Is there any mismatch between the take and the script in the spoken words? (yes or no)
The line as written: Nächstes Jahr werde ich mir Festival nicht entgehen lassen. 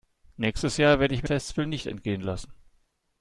no